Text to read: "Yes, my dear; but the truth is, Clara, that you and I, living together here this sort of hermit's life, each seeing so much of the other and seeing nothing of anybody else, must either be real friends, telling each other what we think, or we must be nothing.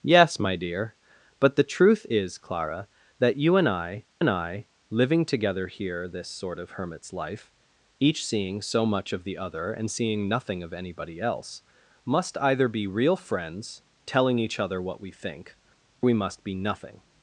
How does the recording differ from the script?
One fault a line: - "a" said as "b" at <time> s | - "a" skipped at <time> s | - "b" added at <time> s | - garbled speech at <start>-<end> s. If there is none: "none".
- "and I" added at 4.2 s
- "or" skipped at 15.6 s